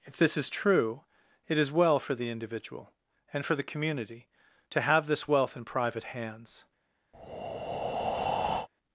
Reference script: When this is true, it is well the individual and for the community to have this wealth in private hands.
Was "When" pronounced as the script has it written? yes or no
no